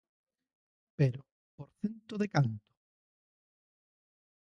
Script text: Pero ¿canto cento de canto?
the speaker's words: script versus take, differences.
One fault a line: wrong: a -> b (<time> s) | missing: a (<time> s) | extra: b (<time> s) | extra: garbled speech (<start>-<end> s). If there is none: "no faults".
wrong: canto -> por (1.6 s)